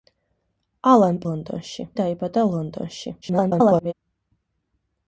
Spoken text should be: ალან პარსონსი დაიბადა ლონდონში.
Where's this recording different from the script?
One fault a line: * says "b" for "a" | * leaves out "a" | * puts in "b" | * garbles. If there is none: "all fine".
* says "ლონდონში" for "პარსონსი"
* garbles